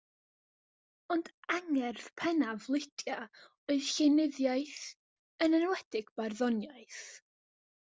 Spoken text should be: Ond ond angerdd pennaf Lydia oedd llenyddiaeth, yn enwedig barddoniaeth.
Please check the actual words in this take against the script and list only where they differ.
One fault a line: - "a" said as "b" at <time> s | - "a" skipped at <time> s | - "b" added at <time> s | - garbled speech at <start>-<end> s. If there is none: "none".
- "ond" skipped at 1.3 s